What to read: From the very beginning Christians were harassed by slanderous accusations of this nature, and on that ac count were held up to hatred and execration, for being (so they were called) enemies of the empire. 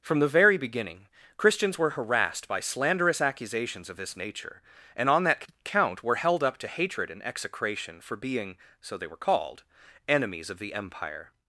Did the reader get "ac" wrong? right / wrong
wrong